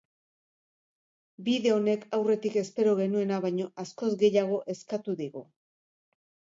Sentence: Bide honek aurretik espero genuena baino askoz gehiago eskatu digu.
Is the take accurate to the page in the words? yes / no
yes